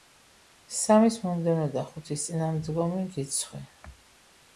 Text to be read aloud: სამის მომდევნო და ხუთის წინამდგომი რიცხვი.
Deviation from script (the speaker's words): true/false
false